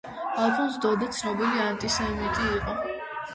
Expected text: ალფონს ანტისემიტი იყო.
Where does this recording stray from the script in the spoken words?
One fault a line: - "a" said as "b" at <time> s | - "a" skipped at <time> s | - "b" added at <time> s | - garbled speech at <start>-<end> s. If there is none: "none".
- "დოდე ცნობილი" added at 0.8 s